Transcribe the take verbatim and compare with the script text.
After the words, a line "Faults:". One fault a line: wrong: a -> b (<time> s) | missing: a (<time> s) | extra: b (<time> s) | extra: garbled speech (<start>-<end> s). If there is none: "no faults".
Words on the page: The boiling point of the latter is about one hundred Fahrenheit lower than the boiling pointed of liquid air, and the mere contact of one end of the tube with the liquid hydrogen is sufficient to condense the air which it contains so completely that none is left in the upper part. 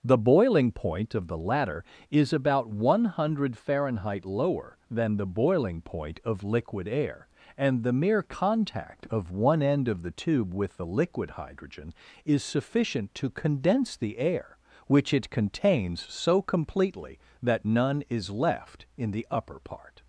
The boiling point of the latter is about one hundred Fahrenheit lower than the boiling point of liquid air, and the mere contact of one end of the tube with the liquid hydrogen is sufficient to condense the air which it contains so completely that none is left in the upper part.
Faults:
wrong: pointed -> point (5.8 s)